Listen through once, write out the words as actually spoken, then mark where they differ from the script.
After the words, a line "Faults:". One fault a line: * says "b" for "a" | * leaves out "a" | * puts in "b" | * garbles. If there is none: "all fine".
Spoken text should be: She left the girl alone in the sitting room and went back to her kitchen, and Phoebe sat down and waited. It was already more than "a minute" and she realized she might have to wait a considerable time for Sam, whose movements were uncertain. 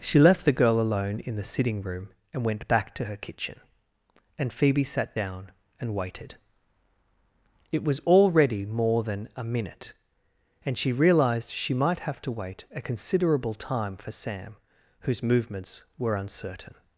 She left the girl alone in the sitting room and went back to her kitchen, and Phoebe sat down and waited. It was already more than "a minute" and she realized she might have to wait a considerable time for Sam, whose movements were uncertain.
Faults:
all fine